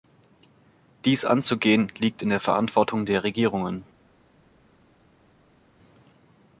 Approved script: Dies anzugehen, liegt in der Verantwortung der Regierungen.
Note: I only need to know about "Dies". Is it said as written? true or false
true